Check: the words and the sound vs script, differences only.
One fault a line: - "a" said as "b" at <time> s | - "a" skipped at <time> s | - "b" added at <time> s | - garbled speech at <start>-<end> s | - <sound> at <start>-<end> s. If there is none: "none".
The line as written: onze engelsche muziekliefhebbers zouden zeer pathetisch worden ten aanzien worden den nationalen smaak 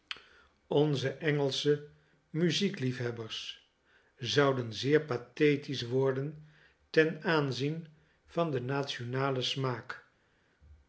- "worden" said as "van" at 8.3 s